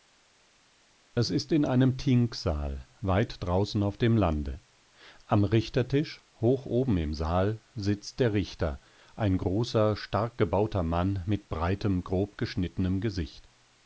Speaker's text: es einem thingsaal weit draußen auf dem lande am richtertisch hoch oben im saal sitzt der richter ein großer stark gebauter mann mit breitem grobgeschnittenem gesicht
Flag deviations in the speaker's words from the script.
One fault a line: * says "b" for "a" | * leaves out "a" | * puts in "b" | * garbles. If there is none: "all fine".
* puts in "ist in"